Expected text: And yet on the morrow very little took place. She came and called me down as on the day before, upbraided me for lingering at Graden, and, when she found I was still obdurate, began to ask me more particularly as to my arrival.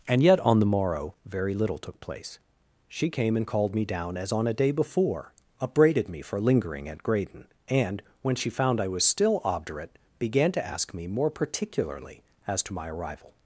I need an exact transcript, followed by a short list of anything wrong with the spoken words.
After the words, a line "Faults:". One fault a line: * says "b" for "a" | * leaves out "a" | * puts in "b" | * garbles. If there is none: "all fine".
And yet on the morrow very little took place. She came and called me down as on a day before, upbraided me for lingering at Graden, and, when she found I was still obdurate, began to ask me more particularly as to my arrival.
Faults:
* says "a" for "the"